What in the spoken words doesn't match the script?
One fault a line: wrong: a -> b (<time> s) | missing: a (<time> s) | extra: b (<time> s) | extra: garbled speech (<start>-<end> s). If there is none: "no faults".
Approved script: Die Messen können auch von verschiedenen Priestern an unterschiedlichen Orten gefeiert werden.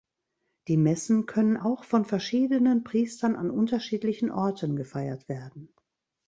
no faults